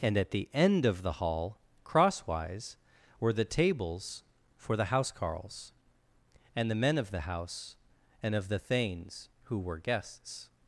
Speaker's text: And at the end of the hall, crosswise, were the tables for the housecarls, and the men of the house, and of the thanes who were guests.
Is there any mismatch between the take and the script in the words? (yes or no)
no